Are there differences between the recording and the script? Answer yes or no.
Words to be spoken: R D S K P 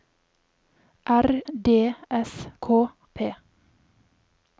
no